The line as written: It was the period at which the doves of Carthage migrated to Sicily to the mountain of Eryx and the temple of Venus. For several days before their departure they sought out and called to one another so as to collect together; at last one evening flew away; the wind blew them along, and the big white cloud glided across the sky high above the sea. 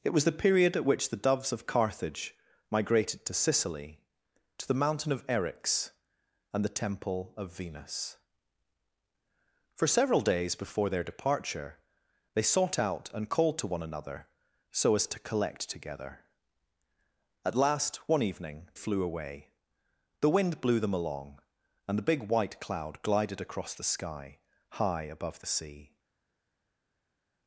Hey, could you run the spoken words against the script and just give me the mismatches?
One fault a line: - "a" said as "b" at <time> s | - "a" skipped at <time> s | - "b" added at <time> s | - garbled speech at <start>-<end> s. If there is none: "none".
none